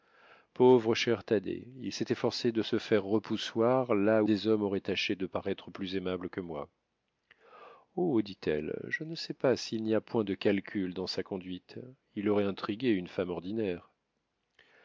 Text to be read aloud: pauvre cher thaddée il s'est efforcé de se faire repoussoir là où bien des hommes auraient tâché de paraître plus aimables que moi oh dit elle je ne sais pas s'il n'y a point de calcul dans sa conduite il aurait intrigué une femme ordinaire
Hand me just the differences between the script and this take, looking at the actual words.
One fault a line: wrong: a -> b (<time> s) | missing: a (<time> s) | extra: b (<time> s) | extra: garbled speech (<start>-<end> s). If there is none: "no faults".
missing: où bien (4.2 s)